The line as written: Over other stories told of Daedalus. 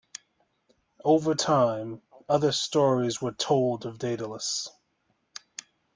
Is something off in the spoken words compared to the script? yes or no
yes